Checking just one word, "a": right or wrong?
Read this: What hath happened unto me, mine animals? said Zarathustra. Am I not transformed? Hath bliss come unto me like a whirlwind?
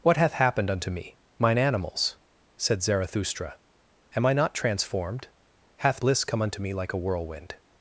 right